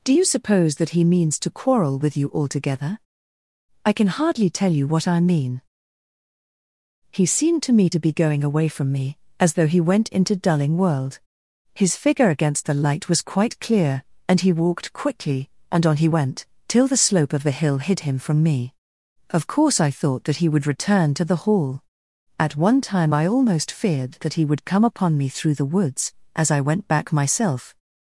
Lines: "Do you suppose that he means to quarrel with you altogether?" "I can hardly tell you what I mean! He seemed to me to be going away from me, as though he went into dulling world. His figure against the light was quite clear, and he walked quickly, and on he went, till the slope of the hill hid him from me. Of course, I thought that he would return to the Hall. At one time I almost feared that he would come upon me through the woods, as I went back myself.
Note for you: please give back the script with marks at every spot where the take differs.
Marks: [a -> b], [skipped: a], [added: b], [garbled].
"Do you suppose that he means to quarrel with you altogether?" "I can hardly tell you what I mean! He seemed to me to be going away from me, as though he went into dulling world. His figure against the light was quite clear, and he walked quickly, and on he went, till the slope of the hill hid him from me. Of course, I thought that he would return to the Hall. At one time I almost feared that he would come upon me through the woods, as I went back myself.